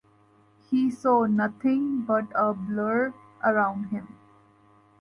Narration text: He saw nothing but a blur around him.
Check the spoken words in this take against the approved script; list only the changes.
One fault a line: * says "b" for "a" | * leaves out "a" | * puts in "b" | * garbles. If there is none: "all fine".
all fine